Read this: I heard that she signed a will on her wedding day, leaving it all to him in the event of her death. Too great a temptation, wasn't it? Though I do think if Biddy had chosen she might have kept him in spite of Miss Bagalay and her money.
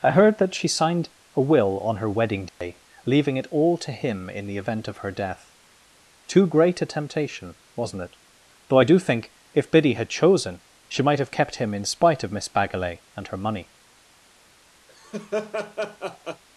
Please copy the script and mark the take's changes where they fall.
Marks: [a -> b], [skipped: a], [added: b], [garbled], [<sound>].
I heard that she signed a will on her wedding day, [dropout] leaving it all to him in the event of her death. Too great a temptation, wasn't it? Though I do think if Biddy had chosen she might have kept him in spite of Miss Bagalay and her money. [laugh]